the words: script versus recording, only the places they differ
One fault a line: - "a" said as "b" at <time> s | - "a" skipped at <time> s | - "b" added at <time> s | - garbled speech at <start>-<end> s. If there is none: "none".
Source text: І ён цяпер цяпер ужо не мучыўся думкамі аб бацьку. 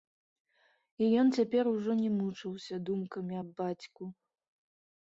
- "цяпер" skipped at 1.7 s